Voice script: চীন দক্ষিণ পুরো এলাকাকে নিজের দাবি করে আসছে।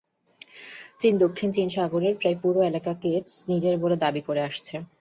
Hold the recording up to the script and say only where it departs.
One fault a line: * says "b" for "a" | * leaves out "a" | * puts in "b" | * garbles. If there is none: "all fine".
* puts in "চীন সাগরের প্রায়"
* puts in "বলে"